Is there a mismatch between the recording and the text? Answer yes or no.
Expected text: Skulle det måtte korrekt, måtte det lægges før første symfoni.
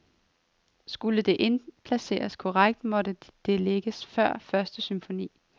yes